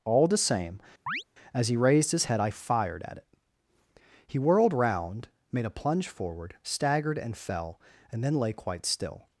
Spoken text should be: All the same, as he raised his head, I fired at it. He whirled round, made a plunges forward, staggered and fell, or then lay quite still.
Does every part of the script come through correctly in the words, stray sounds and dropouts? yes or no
no